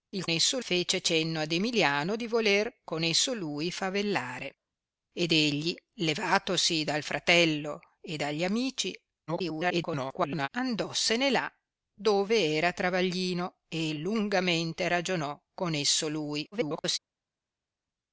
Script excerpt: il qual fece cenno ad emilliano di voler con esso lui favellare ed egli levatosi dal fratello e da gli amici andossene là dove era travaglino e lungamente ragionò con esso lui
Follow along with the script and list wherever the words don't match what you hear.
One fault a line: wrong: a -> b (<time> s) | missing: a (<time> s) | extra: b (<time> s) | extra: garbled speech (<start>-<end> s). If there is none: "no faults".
wrong: qual -> esso (0.3 s)
extra: garbled speech (9.3-10.5 s)
extra: garbled speech (16.5-17.0 s)